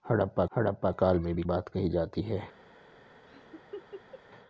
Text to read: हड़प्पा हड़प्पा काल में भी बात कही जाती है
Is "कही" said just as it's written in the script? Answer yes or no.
yes